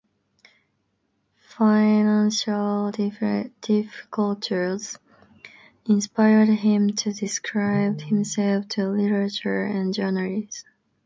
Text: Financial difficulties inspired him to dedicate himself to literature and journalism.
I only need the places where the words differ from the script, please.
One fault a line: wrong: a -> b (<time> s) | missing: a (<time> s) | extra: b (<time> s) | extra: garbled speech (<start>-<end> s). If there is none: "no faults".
no faults